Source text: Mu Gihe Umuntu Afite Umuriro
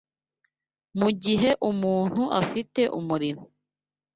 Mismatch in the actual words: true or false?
false